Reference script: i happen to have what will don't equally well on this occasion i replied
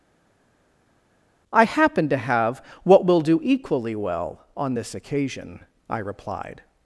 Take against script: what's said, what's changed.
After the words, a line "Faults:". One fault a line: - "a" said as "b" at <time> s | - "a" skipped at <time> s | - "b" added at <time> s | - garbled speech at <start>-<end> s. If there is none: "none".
i happen to have what will do equally well on this occasion i replied
Faults:
- "don't" said as "do" at 3.2 s